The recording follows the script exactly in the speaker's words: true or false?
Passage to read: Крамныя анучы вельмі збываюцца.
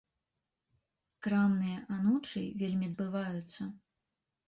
true